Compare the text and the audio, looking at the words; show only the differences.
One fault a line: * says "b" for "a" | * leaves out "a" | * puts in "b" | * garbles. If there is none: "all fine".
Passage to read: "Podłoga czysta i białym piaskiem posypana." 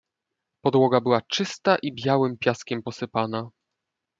* puts in "była"